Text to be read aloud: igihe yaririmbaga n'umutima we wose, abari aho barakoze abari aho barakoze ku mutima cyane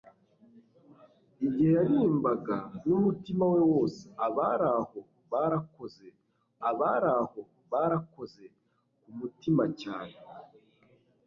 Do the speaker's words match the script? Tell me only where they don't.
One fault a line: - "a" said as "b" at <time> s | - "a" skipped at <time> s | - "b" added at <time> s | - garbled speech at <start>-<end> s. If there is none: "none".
none